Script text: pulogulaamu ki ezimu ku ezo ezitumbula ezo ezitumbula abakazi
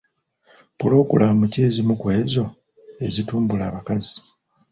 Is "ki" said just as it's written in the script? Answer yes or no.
yes